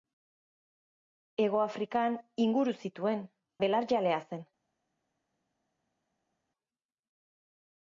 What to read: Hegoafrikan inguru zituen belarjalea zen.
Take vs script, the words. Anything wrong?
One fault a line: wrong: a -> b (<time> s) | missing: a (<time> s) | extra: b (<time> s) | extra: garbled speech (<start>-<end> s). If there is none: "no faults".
no faults